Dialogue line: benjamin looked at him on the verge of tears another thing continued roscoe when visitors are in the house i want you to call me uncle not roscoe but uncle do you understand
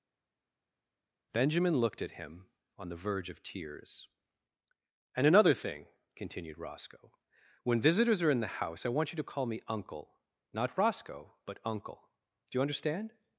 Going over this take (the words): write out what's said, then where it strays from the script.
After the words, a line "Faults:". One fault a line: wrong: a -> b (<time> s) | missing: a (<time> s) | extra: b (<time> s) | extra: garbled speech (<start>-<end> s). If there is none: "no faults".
benjamin looked at him on the verge of tears and another thing continued roscoe when visitors are in the house i want you to call me uncle not roscoe but uncle do you understand
Faults:
extra: and (5.2 s)